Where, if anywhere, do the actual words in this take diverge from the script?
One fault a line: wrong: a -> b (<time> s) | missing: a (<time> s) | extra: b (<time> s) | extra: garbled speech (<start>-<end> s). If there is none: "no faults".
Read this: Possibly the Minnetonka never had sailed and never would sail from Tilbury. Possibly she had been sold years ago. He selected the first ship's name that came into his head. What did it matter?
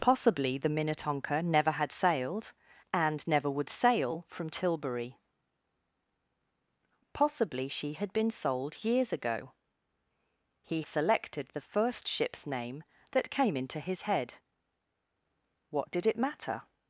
no faults